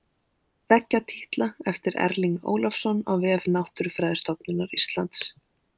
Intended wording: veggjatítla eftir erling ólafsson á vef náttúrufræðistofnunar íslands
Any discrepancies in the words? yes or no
no